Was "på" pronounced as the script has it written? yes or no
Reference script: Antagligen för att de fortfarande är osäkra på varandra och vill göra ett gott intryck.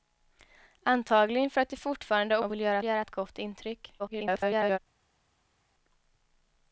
no